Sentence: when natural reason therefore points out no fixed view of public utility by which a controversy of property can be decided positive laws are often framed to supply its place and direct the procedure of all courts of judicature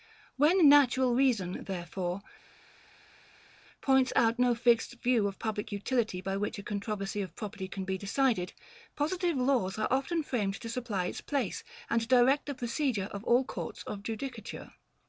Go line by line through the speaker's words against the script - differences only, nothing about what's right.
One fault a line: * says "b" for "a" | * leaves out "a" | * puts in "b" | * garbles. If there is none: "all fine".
all fine